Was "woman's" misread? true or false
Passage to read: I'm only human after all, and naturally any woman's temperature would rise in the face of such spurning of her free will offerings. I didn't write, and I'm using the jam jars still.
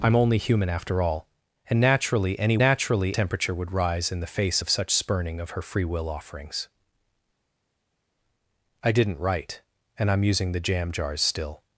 true